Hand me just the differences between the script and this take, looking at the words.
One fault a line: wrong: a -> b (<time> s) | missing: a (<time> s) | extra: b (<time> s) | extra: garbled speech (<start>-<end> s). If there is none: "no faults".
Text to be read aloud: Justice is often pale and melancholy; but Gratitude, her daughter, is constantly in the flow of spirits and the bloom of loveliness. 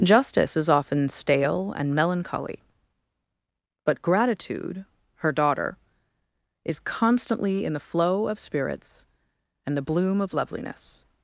wrong: pale -> stale (1.1 s)